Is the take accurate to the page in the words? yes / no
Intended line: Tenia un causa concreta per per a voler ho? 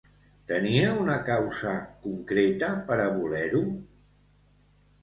no